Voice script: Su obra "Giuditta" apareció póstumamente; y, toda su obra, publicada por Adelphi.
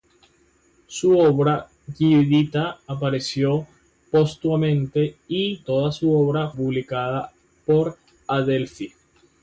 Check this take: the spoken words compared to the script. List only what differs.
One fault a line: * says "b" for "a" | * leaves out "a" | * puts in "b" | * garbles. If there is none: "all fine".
all fine